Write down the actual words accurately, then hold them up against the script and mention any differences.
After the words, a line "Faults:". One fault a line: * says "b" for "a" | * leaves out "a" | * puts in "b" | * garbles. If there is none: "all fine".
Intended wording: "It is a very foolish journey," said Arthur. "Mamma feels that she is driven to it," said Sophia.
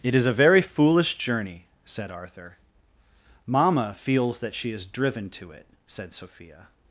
"It is a very foolish journey," said Arthur. "Mamma feels that she is driven to it," said Sophia.
Faults:
all fine